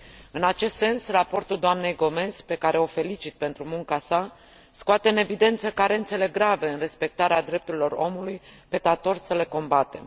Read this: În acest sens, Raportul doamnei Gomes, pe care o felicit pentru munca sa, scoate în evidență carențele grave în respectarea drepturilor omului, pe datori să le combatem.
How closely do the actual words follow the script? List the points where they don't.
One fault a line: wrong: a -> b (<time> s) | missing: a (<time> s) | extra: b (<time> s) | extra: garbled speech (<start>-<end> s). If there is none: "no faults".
no faults